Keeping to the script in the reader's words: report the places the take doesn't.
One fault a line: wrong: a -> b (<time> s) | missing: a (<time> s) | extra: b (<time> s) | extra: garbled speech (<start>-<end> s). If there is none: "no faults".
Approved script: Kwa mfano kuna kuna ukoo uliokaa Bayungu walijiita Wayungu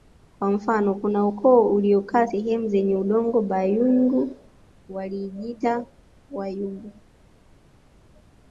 missing: kuna (1.3 s)
extra: sehemu zenye udongo (2.2 s)